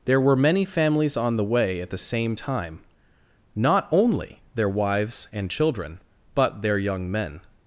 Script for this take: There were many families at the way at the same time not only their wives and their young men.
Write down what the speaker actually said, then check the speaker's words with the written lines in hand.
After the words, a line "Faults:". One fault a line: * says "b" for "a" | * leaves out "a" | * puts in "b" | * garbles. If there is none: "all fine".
There were many families on the way at the same time not only their wives and children, but their young men.
Faults:
* says "on" for "at"
* puts in "children but"